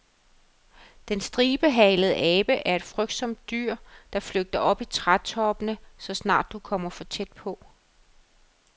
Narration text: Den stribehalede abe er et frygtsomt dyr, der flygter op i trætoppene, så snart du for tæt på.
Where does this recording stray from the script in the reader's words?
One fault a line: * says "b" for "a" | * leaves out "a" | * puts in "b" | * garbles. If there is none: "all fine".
* puts in "kommer"